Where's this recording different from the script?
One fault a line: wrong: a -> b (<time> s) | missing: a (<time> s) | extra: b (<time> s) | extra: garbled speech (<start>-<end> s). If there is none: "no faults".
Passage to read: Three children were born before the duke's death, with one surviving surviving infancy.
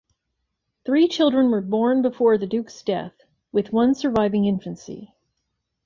missing: surviving (4.5 s)